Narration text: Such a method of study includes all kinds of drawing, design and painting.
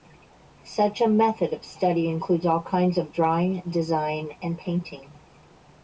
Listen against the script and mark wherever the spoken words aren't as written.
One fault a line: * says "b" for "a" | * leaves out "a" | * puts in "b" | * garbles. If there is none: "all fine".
all fine